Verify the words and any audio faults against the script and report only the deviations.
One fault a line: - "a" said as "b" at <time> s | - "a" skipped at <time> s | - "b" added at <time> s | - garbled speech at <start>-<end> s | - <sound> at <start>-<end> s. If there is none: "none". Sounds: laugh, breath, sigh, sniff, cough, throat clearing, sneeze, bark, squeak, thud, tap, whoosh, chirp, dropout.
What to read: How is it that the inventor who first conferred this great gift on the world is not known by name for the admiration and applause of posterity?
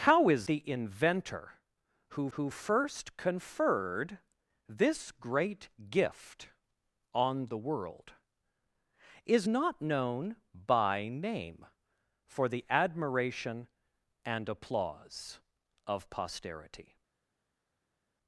- "it that" skipped at 0.5 s
- "who" added at 2.4 s